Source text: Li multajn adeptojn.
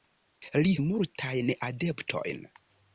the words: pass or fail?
pass